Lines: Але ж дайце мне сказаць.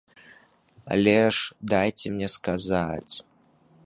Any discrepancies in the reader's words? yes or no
no